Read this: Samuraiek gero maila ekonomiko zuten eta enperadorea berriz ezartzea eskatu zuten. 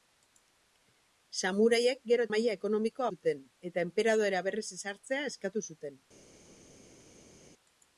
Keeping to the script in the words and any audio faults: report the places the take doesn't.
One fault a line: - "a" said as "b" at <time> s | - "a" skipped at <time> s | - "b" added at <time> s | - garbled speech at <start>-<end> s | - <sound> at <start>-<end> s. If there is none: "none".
none